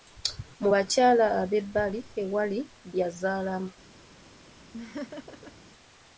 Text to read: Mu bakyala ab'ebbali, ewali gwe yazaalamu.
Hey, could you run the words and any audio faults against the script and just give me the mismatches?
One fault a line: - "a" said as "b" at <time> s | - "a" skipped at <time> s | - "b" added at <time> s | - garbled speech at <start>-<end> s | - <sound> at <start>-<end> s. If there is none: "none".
- "gwe" skipped at 2.6 s
- laugh at 4.7-5.5 s